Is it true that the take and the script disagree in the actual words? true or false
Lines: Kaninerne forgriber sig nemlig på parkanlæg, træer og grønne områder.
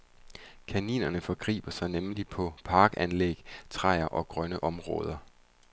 false